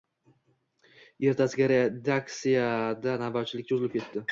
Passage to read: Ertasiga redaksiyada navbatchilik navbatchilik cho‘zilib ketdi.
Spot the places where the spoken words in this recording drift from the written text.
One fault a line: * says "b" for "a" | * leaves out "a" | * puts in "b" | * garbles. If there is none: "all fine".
* leaves out "navbatchilik"